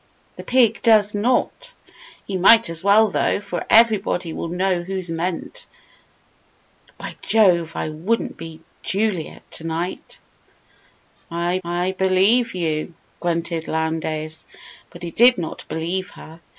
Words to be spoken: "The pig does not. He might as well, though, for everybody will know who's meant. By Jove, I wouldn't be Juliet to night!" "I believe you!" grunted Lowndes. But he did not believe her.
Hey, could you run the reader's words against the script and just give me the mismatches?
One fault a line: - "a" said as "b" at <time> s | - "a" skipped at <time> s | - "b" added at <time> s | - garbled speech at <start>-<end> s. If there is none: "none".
- "I" added at 11.6 s